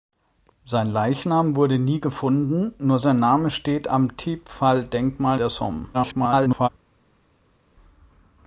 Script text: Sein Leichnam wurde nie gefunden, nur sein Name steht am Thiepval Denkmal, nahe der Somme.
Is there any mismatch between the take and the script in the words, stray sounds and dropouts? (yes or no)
yes